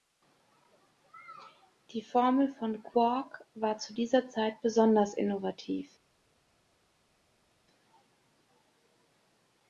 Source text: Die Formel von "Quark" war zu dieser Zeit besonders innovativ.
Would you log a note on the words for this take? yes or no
no